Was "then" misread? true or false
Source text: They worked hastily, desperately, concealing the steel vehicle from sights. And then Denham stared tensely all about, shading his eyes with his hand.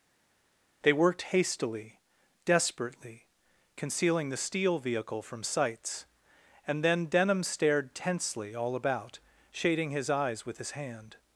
false